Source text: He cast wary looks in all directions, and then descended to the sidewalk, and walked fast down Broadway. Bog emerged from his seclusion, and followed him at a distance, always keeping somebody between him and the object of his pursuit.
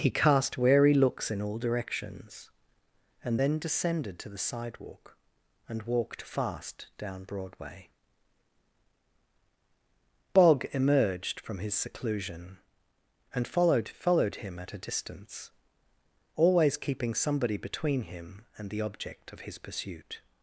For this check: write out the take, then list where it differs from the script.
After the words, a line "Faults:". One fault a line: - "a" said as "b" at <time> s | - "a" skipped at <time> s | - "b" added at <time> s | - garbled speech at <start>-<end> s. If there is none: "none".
He cast wary looks in all directions, and then descended to the sidewalk, and walked fast down Broadway. Bog emerged from his seclusion, and followed followed him at a distance, always keeping somebody between him and the object of his pursuit.
Faults:
- "followed" added at 13.9 s